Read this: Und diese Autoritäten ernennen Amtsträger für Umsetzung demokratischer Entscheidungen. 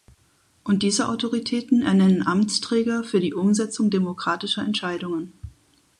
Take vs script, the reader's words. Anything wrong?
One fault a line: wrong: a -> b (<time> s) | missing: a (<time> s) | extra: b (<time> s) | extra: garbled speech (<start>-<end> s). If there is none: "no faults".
extra: die (3.2 s)